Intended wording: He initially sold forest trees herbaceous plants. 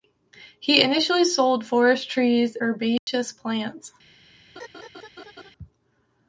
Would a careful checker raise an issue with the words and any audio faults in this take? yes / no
yes